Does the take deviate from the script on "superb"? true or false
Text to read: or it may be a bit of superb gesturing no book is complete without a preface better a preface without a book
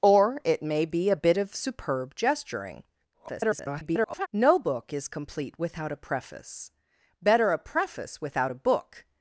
false